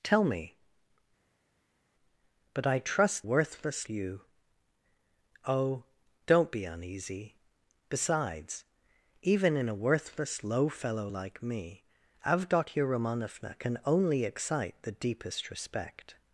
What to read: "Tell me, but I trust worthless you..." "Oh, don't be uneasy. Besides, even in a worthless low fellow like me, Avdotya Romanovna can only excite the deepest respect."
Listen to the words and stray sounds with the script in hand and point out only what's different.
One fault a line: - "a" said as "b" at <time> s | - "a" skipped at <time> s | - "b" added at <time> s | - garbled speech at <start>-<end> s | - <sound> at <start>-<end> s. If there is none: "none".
none